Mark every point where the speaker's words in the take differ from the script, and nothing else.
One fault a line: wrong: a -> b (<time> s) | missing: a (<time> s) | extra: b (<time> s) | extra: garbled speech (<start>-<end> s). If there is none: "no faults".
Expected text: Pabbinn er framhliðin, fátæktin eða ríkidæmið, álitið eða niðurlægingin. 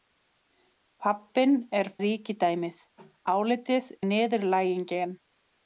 missing: framhliðin fátæktin eða (1.9 s)
missing: eða (3.9 s)